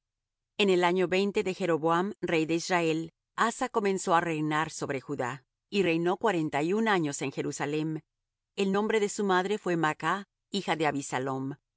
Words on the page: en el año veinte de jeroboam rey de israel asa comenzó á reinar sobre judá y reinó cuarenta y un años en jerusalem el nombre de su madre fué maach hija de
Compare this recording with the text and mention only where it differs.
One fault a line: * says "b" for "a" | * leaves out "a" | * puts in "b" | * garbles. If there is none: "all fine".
all fine